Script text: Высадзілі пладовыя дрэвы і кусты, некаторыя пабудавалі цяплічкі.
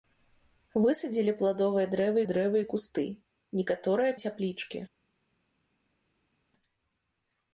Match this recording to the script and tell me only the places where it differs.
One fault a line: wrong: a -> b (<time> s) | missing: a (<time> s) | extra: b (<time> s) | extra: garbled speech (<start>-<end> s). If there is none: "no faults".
extra: дрэвы (2.3 s)
missing: пабудавалі (4.1 s)